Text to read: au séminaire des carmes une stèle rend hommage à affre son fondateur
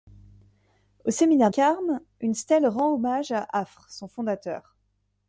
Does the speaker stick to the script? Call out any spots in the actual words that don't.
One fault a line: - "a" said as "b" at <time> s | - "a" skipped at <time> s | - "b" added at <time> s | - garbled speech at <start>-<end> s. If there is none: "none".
- "des" skipped at 1.5 s